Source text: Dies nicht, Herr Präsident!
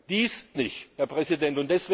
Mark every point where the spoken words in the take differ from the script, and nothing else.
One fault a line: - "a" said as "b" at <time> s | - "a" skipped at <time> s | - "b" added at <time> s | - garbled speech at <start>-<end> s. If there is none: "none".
none